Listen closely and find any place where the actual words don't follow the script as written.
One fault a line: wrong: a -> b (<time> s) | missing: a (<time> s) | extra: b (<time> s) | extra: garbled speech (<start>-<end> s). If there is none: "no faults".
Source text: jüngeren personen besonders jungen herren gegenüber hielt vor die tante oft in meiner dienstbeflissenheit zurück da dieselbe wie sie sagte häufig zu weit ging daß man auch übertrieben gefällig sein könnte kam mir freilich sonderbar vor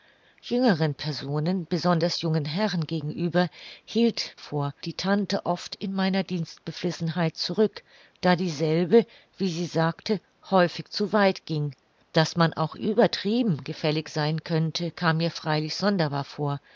no faults